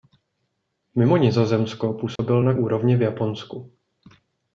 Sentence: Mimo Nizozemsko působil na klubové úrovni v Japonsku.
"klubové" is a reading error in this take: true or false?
true